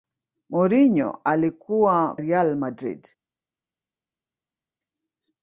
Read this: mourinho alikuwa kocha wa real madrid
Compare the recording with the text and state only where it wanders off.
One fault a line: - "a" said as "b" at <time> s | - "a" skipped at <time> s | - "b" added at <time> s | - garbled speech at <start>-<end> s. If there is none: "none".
- "kocha wa" skipped at 2.1 s